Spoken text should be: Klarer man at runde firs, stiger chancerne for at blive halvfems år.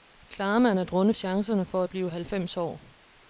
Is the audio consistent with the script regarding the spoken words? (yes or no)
no